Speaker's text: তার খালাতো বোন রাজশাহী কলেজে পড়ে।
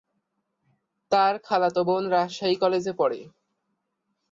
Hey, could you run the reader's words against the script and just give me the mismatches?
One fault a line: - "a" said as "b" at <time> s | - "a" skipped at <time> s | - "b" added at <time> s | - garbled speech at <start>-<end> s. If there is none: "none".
none